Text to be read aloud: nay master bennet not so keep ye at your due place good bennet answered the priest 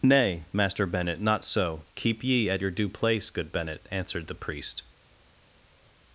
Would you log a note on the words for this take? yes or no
no